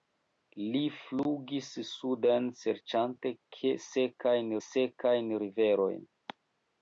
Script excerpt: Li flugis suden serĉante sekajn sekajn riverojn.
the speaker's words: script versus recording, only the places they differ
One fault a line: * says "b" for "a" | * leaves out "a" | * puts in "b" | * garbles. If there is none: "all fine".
all fine